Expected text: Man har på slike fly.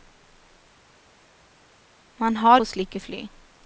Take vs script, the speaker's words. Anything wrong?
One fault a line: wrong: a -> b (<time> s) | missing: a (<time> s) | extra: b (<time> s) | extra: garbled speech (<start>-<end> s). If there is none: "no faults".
no faults